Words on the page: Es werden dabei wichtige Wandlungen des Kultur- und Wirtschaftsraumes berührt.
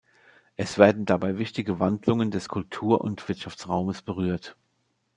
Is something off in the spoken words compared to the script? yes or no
no